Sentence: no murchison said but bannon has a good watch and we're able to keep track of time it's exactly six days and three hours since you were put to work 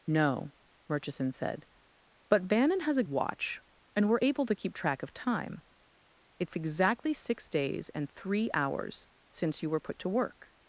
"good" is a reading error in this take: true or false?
true